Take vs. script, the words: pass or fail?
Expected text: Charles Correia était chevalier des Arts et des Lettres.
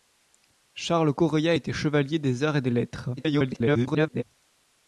fail